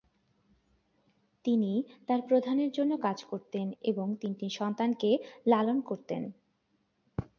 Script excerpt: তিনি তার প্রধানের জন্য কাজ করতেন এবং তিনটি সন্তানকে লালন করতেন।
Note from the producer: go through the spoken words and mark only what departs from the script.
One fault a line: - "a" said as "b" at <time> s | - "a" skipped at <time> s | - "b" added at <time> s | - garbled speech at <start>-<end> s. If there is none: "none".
none